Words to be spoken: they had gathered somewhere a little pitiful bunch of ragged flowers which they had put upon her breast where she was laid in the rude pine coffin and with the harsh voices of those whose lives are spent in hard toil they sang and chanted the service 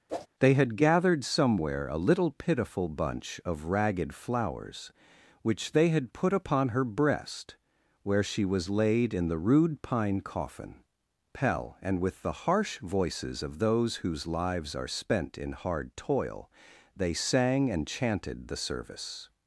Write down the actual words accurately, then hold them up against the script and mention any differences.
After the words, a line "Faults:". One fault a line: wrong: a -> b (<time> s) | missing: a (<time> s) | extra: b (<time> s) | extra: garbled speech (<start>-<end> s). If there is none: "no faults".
they had gathered somewhere a little pitiful bunch of ragged flowers which they had put upon her breast where she was laid in the rude pine coffin pell and with the harsh voices of those whose lives are spent in hard toil they sang and chanted the service
Faults:
extra: pell (11.3 s)